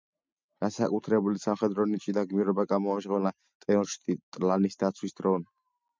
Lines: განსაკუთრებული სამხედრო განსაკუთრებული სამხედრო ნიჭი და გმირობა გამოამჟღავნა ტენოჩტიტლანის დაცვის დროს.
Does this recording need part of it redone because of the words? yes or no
yes